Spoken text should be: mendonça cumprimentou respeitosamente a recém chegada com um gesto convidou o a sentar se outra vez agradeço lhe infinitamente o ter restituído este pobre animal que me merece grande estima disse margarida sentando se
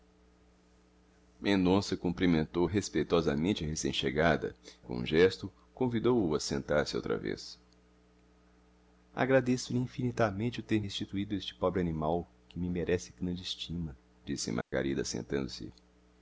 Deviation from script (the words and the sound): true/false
true